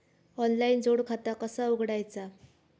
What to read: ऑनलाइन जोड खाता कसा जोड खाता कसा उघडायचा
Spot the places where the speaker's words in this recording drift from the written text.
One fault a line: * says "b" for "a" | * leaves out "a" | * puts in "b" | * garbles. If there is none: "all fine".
* leaves out "जोड खाता कसा"